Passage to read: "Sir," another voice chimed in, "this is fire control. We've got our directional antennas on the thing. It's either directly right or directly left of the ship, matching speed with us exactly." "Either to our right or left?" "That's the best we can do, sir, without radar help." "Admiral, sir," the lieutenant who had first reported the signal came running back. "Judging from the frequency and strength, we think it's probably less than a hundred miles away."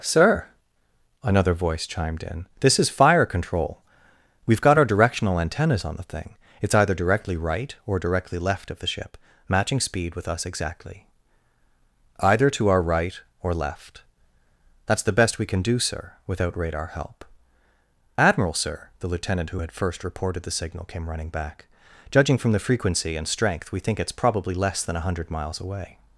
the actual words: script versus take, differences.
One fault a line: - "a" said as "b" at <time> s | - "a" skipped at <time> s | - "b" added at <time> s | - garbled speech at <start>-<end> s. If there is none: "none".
none